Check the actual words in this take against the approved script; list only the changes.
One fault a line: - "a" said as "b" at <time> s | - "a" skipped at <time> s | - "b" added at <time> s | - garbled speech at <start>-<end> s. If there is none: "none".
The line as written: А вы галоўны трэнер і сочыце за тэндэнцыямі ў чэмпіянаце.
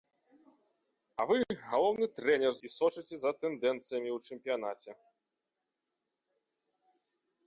none